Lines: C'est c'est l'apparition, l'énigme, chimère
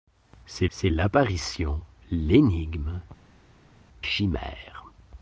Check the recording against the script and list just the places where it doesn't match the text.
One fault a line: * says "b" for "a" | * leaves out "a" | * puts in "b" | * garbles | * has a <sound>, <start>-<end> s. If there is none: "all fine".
all fine